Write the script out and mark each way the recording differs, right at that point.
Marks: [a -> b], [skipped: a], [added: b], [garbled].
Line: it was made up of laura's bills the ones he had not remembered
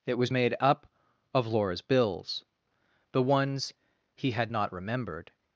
it was made up of laura's bills the ones he had not remembered